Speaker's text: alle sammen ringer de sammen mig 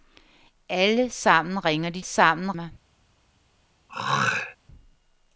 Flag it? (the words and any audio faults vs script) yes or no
yes